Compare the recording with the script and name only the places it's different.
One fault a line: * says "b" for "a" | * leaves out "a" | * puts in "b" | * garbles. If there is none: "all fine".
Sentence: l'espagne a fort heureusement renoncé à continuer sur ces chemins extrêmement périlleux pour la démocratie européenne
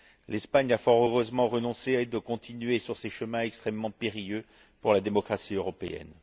all fine